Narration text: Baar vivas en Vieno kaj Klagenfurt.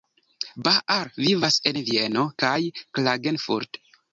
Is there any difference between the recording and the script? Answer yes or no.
no